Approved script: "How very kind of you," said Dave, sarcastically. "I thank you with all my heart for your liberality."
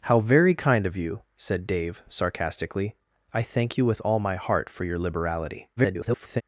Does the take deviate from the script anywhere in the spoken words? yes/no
yes